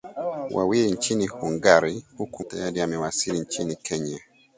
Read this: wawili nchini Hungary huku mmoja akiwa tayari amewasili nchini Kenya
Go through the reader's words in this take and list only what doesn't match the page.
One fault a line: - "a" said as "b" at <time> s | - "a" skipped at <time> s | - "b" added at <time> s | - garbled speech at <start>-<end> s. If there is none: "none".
- "mmoja akiwa" skipped at 2.4 s